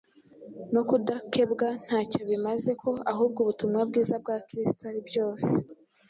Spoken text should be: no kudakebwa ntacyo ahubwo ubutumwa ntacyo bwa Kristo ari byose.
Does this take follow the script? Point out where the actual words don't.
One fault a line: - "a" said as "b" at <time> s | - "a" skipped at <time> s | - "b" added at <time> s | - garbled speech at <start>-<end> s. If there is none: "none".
- "bimaze ko" added at 2.3 s
- "ntacyo" said as "bwiza" at 3.9 s